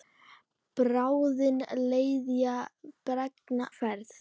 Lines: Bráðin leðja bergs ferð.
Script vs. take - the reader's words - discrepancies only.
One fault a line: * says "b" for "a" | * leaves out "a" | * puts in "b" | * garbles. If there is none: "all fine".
all fine